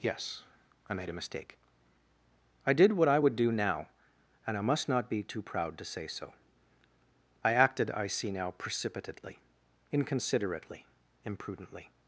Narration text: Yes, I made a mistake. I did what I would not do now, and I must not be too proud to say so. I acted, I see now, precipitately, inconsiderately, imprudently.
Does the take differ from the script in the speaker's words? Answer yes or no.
yes